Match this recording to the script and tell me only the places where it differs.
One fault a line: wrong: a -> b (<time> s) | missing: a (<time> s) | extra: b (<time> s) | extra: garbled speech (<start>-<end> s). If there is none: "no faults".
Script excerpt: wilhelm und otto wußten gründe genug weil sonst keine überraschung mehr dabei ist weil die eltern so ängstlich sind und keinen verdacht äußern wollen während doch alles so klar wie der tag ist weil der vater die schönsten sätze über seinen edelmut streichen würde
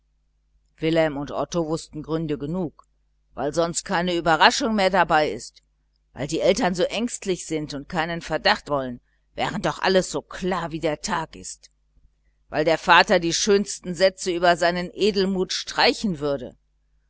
missing: äußern (8.7 s)